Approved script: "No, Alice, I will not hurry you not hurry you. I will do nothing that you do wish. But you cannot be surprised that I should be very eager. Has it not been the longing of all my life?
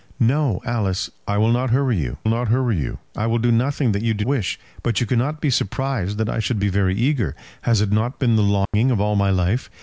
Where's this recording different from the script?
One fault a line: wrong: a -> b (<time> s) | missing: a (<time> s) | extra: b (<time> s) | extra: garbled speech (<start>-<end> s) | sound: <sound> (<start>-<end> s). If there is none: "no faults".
sound: dropout (8.7-8.7 s)